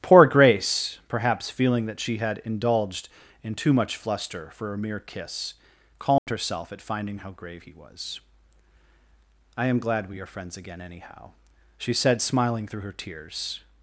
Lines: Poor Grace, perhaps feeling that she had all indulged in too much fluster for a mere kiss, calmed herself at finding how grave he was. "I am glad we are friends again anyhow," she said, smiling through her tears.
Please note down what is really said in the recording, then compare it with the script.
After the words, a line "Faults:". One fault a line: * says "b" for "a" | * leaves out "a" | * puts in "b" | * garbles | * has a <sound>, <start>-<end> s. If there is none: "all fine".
Poor Grace, perhaps feeling that she had indulged in too much fluster for a mere kiss, calmed herself at finding how grave he was. "I am glad we are friends again anyhow," she said, smiling through her tears.
Faults:
* leaves out "all"
* has a dropout, 6.2-6.3 s